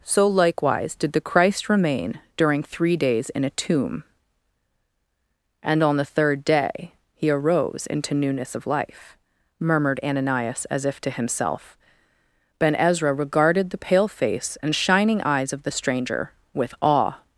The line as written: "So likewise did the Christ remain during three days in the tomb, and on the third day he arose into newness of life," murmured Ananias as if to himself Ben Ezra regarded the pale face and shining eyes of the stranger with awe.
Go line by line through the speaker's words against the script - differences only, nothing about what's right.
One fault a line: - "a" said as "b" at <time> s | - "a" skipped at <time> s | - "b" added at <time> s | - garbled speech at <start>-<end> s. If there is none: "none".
- "the" said as "a" at 3.4 s